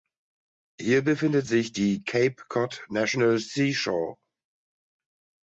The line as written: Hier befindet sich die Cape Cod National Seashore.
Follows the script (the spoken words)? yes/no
yes